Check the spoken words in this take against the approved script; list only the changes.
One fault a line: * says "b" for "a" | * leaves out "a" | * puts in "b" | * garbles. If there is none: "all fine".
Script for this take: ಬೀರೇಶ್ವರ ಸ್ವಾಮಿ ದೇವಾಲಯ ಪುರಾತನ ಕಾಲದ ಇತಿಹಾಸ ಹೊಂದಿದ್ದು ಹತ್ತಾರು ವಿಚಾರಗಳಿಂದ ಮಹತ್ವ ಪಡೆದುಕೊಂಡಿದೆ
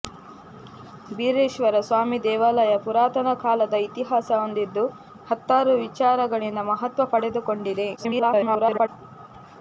* garbles